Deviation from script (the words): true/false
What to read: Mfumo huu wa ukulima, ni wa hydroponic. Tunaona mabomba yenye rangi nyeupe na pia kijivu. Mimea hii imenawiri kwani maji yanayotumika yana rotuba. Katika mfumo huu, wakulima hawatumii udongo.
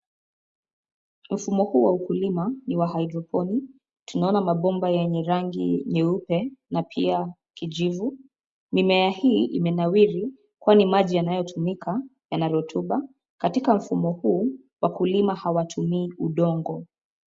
false